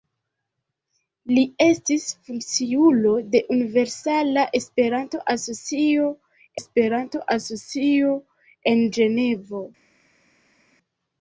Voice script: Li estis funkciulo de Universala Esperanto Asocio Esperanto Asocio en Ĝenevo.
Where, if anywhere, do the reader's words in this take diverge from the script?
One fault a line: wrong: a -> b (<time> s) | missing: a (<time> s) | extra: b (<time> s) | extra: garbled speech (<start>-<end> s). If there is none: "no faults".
no faults